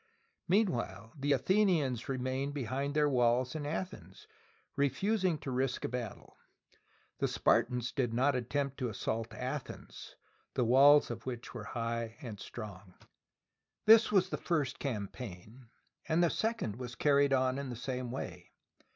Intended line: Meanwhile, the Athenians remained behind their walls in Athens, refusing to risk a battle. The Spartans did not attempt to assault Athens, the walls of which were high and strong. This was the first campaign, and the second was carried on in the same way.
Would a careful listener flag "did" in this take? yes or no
no